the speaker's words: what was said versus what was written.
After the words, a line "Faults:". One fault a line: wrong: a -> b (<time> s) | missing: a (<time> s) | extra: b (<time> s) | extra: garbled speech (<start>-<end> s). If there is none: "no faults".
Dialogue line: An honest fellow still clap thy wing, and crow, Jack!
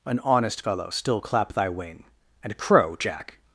An honest fellow still clap thy wing, and crow, Jack!
Faults:
no faults